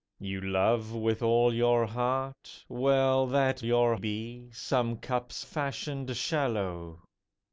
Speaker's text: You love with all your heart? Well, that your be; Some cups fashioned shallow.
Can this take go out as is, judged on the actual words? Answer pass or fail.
pass